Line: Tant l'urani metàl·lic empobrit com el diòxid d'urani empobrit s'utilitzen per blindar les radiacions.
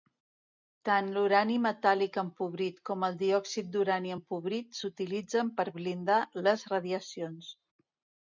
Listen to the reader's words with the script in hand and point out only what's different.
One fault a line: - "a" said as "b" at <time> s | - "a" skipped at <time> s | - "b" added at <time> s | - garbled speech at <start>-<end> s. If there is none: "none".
none